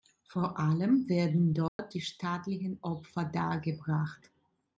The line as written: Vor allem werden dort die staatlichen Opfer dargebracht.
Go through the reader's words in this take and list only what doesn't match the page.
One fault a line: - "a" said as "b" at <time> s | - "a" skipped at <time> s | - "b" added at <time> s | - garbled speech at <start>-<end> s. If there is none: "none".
none